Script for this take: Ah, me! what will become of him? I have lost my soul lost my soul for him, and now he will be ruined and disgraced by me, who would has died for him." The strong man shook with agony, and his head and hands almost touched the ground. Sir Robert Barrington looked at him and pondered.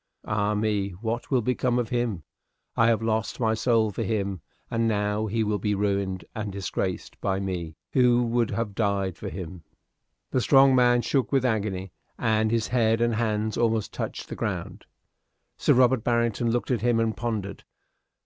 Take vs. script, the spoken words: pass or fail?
fail